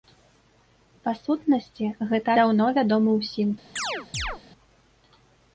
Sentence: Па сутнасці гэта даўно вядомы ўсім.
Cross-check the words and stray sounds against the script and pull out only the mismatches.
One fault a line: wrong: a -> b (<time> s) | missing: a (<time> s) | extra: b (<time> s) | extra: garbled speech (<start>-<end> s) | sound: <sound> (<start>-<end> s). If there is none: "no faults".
sound: chirp (3.8-4.4 s)